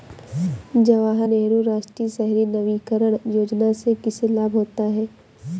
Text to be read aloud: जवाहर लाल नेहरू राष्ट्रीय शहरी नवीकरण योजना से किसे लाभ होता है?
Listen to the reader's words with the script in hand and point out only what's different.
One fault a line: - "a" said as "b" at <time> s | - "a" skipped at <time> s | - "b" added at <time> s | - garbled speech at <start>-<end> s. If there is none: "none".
- "लाल" skipped at 1.3 s